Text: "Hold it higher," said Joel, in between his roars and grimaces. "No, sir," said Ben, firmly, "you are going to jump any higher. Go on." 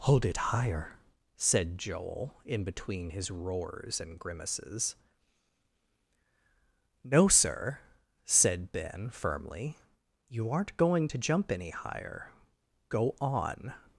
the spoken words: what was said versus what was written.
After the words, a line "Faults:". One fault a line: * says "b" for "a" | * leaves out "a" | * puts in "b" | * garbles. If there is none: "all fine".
"Hold it higher," said Joel, in between his roars and grimaces. "No, sir," said Ben, firmly, "you aren't going to jump any higher. Go on."
Faults:
* says "aren't" for "are"